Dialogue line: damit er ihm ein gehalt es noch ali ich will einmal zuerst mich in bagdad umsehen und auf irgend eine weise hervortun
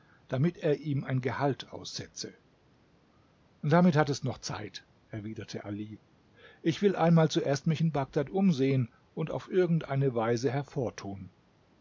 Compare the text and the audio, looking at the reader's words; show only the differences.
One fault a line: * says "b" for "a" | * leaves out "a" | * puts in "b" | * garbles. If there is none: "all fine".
* puts in "aussetze damit hat"
* puts in "zeit erwiderte"